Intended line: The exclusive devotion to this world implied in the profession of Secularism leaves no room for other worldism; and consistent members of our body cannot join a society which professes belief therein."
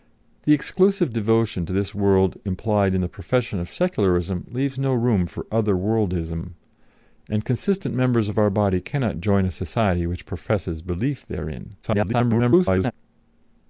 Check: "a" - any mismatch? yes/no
no